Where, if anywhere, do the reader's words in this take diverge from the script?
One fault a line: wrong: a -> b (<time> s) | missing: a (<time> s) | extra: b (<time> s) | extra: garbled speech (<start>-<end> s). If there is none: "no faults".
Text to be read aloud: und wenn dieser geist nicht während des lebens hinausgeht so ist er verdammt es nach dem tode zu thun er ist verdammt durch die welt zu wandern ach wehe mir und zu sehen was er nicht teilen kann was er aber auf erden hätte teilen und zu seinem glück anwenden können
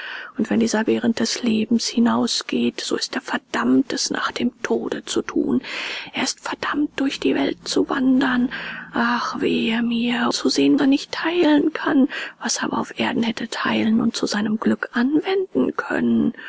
missing: geist nicht (0.8 s)
missing: und (10.3 s)
missing: was (10.8 s)